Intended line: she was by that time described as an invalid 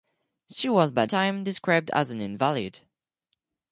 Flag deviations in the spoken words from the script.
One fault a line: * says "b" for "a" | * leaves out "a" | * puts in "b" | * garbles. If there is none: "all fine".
* leaves out "that"